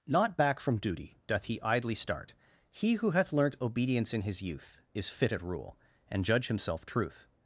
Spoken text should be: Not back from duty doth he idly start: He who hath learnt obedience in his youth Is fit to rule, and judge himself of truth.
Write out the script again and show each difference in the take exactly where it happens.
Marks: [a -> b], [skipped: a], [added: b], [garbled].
Not back from duty doth he idly start: He who hath learnt obedience in his youth Is fit [to -> at] rule, and judge himself [skipped: of] truth.